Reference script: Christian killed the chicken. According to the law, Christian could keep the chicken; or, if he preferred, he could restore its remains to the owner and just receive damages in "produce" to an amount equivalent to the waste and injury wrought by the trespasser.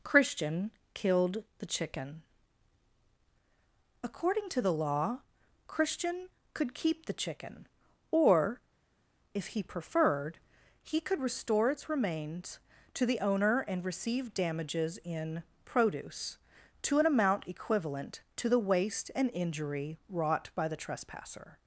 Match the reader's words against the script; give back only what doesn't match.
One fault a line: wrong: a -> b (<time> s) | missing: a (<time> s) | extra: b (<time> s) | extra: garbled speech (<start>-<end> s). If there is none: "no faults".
missing: just (13.8 s)